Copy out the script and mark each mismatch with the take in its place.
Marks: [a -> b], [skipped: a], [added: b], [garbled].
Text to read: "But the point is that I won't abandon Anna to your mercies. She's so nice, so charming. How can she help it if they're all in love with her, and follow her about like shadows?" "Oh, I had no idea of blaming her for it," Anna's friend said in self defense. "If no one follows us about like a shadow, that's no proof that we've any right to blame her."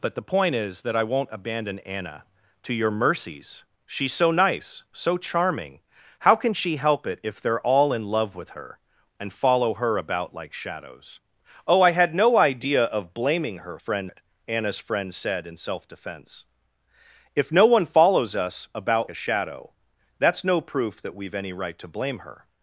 "But the point is that I won't abandon Anna to your mercies. She's so nice, so charming. How can she help it if they're all in love with her, and follow her about like shadows?" "Oh, I had no idea of blaming her [for -> friend] it," Anna's friend said in self defense. "If no one follows us about [skipped: like] a shadow, that's no proof that we've any right to blame her."